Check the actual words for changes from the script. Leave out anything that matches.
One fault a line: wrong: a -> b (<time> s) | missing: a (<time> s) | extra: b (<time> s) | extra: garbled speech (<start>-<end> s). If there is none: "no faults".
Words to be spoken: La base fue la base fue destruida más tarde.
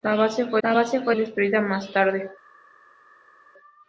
no faults